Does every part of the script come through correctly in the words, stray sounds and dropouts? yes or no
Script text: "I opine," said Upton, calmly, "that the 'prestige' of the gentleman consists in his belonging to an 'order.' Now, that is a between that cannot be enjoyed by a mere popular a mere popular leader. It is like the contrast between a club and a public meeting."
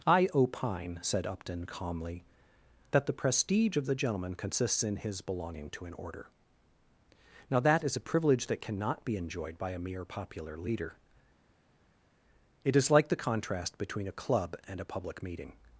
no